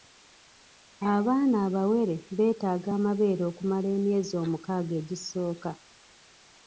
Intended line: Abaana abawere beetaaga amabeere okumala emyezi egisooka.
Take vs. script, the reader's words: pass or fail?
fail